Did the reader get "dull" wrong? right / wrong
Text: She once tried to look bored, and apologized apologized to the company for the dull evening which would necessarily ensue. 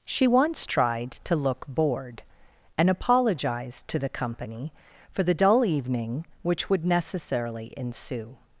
right